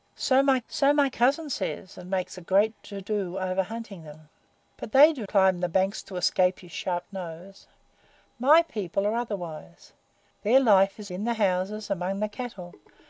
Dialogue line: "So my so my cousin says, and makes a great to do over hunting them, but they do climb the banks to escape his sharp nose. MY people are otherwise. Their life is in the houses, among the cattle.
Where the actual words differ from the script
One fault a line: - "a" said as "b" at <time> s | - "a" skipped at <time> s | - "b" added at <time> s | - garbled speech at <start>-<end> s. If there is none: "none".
none